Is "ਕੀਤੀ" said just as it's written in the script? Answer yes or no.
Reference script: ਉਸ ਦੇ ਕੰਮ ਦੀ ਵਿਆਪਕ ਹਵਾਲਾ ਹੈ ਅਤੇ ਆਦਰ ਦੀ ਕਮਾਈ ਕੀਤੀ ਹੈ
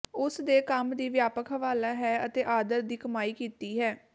yes